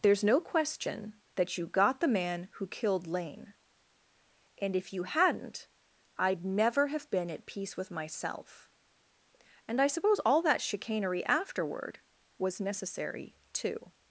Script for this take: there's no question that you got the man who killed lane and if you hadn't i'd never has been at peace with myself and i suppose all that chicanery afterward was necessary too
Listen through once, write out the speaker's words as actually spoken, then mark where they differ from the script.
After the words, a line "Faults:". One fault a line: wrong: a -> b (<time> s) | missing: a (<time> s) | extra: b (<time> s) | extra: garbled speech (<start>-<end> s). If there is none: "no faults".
there's no question that you got the man who killed lane and if you hadn't i'd never have been at peace with myself and i suppose all that chicanery afterward was necessary too
Faults:
wrong: has -> have (6.9 s)